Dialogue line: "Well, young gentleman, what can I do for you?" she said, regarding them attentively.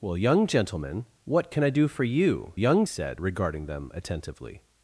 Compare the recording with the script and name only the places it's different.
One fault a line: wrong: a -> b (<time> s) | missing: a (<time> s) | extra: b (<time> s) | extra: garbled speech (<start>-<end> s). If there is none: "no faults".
wrong: she -> young (2.6 s)